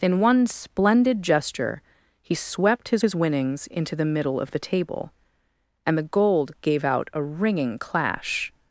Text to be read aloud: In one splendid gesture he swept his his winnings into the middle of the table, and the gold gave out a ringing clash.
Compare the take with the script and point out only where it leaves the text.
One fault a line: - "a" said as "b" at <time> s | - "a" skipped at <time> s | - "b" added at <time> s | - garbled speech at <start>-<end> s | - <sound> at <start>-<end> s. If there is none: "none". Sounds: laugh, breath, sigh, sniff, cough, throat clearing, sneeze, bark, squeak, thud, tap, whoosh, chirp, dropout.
none